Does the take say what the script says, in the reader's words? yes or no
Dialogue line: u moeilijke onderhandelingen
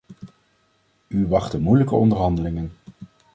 no